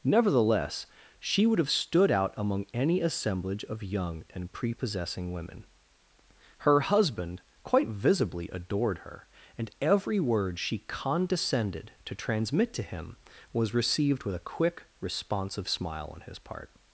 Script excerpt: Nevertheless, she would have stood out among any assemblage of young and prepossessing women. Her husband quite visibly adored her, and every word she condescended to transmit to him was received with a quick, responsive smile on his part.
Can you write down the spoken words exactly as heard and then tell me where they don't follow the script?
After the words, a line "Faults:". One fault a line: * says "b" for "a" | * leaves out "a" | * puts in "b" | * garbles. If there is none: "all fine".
Nevertheless, she would have stood out among any assemblage of young and prepossessing women. Her husband quite visibly adored her, and every word she condescended to transmit to him was received with a quick, responsive smile on his part.
Faults:
all fine